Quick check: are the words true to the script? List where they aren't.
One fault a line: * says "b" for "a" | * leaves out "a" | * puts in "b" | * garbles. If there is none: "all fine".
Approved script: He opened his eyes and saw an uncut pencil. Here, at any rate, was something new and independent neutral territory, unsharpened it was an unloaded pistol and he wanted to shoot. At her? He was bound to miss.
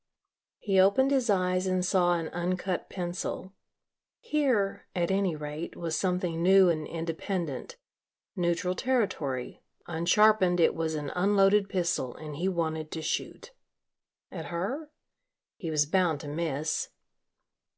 all fine